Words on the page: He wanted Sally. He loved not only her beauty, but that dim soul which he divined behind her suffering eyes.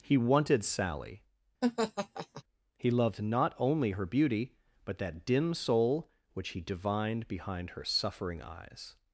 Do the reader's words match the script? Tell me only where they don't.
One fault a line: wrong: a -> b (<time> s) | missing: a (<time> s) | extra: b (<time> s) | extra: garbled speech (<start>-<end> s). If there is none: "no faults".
no faults